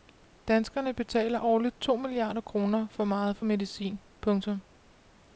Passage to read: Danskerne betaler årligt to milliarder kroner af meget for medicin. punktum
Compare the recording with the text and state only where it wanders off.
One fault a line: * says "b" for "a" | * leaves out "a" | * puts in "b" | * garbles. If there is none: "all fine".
* says "for" for "af"